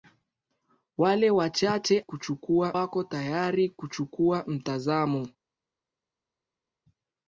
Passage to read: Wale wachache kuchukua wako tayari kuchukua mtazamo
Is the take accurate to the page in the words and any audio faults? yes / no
yes